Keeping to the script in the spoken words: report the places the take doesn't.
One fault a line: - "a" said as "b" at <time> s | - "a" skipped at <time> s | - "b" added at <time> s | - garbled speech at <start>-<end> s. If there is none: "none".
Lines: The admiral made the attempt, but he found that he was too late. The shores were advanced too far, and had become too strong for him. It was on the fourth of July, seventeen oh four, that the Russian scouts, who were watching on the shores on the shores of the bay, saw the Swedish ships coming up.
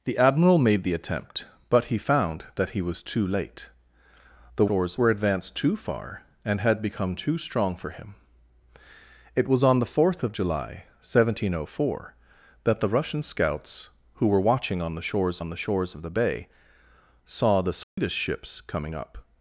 none